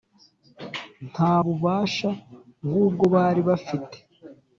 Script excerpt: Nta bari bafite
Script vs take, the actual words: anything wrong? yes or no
yes